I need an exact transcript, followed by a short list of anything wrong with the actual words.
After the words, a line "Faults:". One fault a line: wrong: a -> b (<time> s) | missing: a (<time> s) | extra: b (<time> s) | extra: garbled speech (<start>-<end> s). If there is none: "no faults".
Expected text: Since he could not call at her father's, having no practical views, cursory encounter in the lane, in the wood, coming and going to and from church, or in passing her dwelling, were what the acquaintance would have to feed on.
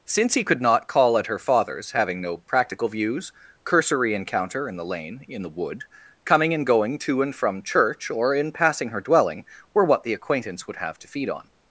Since he could not call at her father's, having no practical views, cursory encounter in the lane, in the wood, coming and going to and from church, or in passing her dwelling, were what the acquaintance would have to feed on.
Faults:
no faults